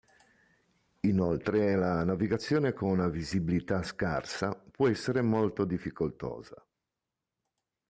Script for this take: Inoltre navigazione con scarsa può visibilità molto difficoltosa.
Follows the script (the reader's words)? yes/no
no